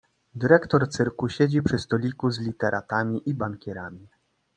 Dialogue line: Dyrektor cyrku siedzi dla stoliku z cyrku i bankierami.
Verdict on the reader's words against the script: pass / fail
fail